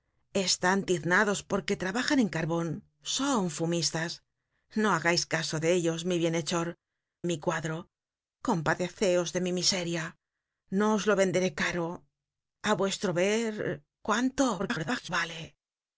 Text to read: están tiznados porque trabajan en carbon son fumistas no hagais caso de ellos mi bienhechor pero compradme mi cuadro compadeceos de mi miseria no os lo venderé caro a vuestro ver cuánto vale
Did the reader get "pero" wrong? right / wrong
wrong